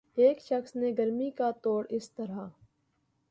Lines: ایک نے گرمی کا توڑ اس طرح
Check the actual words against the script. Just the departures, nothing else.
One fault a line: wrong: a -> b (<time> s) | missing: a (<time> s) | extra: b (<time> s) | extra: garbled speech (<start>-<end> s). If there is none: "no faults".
extra: شخص (0.4 s)